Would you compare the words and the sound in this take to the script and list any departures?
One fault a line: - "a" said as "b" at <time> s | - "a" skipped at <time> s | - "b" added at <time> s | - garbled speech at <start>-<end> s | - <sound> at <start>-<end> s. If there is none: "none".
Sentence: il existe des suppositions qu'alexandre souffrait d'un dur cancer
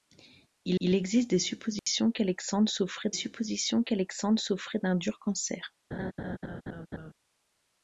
- "il" added at 0.8 s
- dropout at 1.8-1.9 s
- "suppositions qu'alexandre souffrait" added at 3.1 s
- laugh at 5.9-7.1 s